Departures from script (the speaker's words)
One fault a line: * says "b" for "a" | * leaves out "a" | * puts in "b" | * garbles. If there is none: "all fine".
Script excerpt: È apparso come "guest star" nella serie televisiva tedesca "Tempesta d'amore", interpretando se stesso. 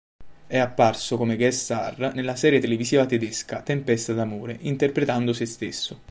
all fine